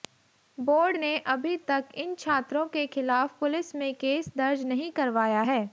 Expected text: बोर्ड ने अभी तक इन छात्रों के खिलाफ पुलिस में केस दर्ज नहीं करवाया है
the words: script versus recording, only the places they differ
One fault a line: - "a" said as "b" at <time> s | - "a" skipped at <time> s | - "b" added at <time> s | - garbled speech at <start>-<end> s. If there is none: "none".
none